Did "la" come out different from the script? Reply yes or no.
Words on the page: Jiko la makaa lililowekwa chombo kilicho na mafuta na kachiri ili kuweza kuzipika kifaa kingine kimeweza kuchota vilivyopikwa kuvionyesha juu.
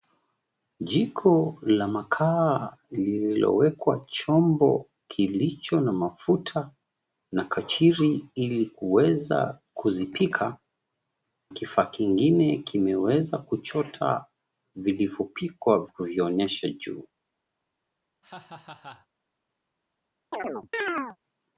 no